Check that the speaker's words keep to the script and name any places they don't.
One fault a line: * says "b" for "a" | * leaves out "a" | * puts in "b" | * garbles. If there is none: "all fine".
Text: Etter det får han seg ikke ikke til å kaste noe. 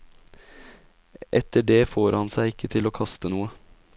* leaves out "ikke"